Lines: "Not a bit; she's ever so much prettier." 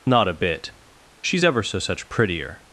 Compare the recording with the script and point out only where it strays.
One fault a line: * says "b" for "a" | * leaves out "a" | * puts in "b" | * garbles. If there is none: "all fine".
* says "such" for "much"